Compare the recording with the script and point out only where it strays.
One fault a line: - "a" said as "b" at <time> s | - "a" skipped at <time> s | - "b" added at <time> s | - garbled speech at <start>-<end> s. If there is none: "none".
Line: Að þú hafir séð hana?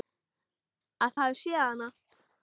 - "þú" skipped at 1.1 s